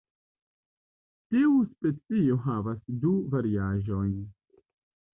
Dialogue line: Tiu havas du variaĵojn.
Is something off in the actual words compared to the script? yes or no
yes